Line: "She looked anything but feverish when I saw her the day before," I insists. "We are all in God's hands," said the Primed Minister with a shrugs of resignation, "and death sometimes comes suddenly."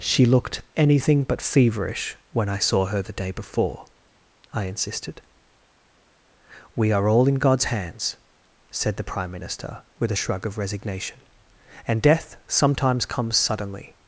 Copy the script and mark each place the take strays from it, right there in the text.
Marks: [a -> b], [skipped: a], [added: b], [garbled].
"She looked anything but feverish when I saw her the day before," I [insists. -> insisted] "We are all in God's hands," said the [Primed -> Prime] Minister with a [shrugs -> shrug] of resignation, "and death sometimes comes suddenly."